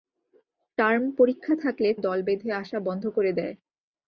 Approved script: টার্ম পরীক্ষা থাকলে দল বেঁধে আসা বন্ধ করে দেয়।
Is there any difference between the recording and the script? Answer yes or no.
no